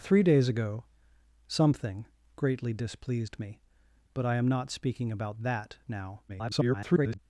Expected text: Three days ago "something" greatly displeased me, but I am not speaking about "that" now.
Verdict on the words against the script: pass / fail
fail